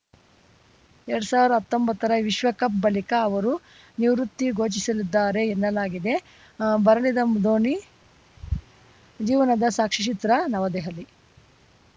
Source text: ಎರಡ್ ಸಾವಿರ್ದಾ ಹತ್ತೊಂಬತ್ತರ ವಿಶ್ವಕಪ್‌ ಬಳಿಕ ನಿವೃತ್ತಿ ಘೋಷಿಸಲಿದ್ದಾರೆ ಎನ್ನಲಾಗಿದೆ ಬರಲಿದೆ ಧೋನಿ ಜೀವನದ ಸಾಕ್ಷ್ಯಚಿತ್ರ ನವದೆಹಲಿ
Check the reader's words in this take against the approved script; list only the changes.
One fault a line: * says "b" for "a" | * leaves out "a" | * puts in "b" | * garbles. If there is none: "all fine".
* puts in "ಅವರು"